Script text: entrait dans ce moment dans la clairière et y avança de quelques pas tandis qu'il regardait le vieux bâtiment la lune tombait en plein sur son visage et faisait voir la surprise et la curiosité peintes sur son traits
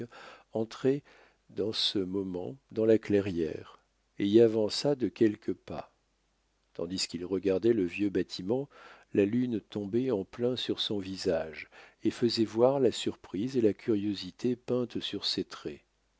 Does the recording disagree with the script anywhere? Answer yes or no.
yes